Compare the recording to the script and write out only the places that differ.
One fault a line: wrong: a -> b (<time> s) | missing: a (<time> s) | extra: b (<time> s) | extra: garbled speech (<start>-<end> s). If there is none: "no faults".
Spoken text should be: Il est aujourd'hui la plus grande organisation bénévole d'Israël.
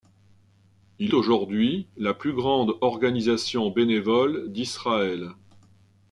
missing: est (1.1 s)